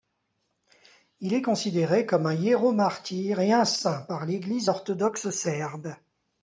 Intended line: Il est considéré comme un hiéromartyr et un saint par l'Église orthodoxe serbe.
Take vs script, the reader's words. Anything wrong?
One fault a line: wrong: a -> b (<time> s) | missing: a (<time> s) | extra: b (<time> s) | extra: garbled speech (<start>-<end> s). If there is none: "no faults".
no faults